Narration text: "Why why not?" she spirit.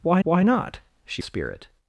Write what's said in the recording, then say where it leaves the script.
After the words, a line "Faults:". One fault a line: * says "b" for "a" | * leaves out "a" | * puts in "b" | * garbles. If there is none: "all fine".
"Why why not?" she spirit.
Faults:
all fine